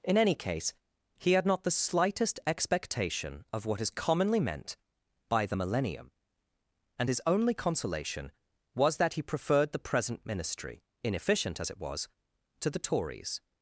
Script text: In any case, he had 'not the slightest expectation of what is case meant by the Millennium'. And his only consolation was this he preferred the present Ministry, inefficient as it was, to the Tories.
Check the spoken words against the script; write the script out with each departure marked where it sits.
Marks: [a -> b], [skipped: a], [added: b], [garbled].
In any case, he had 'not the slightest expectation of what is [case -> commonly] meant by the Millennium'. And his only consolation was [this -> that] he preferred the present Ministry, inefficient as it was, to the Tories.